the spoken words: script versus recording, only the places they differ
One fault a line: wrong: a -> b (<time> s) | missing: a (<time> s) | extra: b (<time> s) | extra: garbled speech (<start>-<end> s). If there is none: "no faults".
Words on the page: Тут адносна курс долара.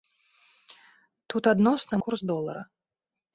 no faults